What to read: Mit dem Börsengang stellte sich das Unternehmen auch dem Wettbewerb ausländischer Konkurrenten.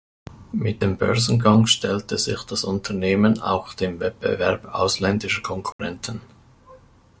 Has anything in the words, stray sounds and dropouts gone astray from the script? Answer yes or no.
yes